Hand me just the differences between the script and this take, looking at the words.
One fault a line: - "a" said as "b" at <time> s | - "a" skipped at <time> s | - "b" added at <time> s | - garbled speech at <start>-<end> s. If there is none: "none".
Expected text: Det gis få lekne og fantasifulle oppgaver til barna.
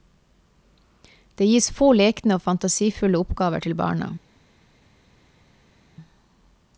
none